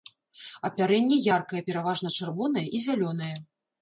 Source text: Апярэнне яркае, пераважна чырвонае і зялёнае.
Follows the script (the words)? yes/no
yes